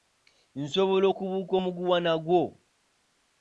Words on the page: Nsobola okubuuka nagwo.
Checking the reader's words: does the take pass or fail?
fail